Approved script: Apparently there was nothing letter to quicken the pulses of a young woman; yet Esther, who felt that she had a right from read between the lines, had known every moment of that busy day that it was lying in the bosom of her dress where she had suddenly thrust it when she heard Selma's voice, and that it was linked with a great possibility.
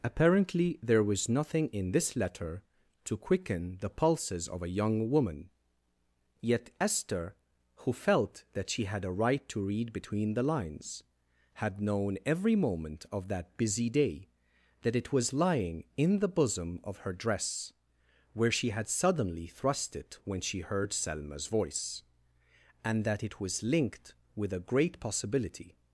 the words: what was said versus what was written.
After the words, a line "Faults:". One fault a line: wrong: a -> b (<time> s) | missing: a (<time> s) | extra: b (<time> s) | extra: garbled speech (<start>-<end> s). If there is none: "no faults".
Apparently there was nothing in this letter to quicken the pulses of a young woman; yet Esther, who felt that she had a right to read between the lines, had known every moment of that busy day that it was lying in the bosom of her dress where she had suddenly thrust it when she heard Selma's voice, and that it was linked with a great possibility.
Faults:
extra: in this (1.7 s)
wrong: from -> to (9.5 s)